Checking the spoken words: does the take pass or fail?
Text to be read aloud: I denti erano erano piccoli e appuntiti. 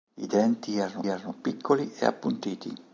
pass